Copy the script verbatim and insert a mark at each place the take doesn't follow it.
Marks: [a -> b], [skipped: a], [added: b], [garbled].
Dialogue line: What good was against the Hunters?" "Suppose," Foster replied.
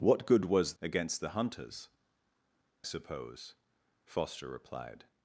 What good was against the Hunters?" "Suppose," Foster replied.